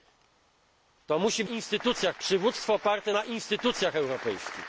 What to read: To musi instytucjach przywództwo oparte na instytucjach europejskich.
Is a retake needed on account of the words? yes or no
no